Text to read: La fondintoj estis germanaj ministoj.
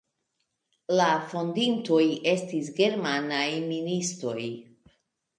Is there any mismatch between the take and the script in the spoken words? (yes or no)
no